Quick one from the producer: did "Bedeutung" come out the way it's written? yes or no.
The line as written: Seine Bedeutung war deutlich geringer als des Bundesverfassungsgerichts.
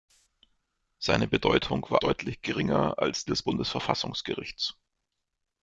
yes